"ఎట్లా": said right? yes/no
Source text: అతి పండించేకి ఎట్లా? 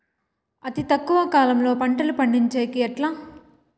yes